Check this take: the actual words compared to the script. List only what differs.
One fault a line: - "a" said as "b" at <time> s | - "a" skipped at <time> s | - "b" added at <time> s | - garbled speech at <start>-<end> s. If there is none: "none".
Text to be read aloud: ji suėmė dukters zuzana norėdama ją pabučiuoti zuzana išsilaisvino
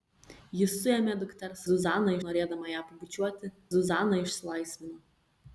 none